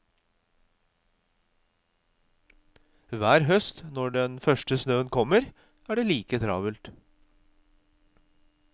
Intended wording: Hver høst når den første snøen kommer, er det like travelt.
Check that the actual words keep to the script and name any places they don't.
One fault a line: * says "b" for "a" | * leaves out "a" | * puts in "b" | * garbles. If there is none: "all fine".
all fine